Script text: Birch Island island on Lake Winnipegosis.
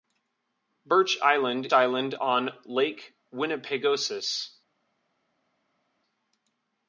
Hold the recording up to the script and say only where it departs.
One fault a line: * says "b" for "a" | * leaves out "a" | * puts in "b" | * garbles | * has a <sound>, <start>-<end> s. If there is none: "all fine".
all fine